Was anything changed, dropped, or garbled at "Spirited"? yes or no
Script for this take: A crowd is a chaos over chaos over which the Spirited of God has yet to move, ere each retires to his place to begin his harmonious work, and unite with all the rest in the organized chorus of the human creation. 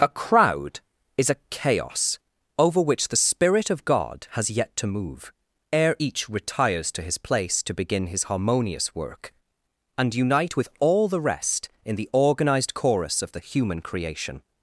yes